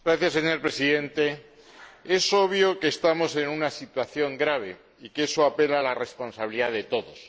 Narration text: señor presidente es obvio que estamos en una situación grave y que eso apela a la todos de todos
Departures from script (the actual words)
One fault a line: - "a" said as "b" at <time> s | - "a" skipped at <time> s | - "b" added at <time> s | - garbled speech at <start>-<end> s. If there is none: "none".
- "todos" said as "responsabilidad" at 5.9 s